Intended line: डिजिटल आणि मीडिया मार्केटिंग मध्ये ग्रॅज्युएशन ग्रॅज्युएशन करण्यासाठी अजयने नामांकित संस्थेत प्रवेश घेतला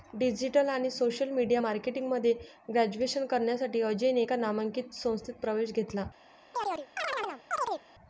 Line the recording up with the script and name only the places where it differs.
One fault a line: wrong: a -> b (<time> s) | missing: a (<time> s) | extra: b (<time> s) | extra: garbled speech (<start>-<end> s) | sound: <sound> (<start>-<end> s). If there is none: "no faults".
extra: सोशल (0.9 s)
missing: ग्रॅज्युएशन (3.3 s)
extra: एका (4.2 s)
sound: chirp (6.5-7.8 s)